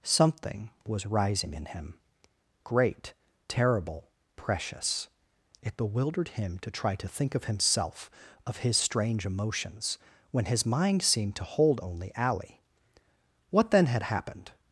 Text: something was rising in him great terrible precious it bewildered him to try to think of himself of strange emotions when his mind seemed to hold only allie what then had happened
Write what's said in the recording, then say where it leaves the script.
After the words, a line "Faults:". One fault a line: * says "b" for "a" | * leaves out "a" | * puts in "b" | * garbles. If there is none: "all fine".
something was rising in him great terrible precious it bewildered him to try to think of himself of his strange emotions when his mind seemed to hold only allie what then had happened
Faults:
* puts in "his"